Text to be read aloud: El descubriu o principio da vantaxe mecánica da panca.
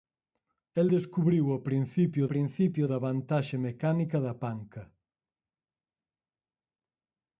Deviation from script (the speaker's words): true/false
true